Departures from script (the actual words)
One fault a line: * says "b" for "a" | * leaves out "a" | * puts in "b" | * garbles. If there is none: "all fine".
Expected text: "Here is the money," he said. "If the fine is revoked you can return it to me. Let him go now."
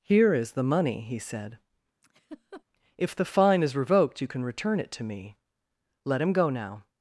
all fine